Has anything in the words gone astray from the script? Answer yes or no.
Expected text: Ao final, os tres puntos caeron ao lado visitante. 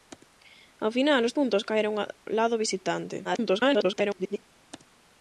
yes